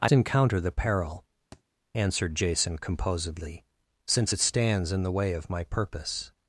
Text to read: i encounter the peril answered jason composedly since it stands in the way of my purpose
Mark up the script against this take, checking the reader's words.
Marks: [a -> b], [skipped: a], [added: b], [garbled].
i encounter the peril answered jason composedly since it stands in the way of my purpose